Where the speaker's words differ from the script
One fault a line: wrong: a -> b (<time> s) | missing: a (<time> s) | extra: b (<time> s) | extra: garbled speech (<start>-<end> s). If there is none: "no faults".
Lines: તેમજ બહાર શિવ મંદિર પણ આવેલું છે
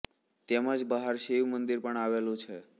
no faults